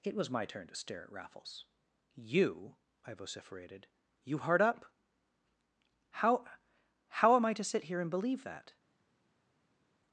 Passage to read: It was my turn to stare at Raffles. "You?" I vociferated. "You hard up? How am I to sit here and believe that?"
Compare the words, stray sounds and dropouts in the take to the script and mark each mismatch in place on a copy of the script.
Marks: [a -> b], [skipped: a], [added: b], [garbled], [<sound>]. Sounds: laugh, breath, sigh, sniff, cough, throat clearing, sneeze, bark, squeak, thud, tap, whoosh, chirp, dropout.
It was my turn to stare at Raffles. "You?" I vociferated. "You hard up? How [added: How] am I to sit here and believe that?"